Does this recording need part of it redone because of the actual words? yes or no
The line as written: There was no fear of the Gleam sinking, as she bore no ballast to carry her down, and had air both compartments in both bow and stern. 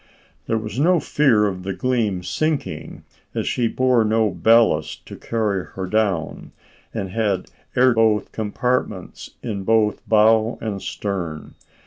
no